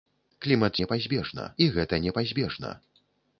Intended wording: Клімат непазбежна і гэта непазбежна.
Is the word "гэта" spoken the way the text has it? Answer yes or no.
yes